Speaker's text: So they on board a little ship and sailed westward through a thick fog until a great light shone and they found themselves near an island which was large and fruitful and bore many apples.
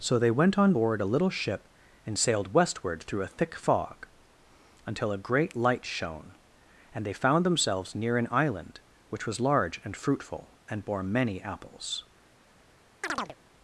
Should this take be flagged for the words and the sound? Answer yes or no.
yes